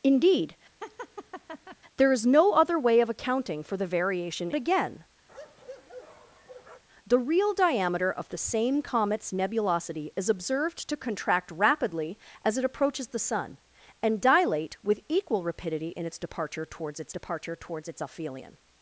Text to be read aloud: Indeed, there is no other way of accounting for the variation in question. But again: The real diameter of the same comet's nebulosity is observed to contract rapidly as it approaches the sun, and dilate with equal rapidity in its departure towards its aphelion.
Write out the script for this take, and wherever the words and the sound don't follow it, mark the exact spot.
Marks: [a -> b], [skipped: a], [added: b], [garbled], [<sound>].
Indeed, [laugh] there is no other way of accounting for the variation [skipped: in question. But] again: [bark] The real diameter of the same comet's nebulosity is observed to contract rapidly as it approaches the sun, and dilate with equal rapidity in its departure towards its [added: departure towards its] aphelion.